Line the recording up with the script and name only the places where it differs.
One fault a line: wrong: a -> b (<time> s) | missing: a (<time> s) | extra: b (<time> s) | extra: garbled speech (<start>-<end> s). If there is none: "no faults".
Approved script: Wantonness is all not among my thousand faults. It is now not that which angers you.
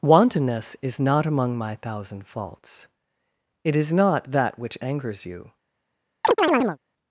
missing: all (1.0 s)
missing: now (3.9 s)